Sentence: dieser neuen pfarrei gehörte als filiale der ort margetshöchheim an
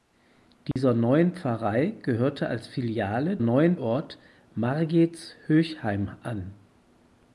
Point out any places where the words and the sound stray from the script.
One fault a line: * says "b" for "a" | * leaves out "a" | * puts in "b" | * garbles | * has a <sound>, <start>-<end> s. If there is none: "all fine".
* has a dropout, 0.7-0.8 s
* says "neuen" for "der"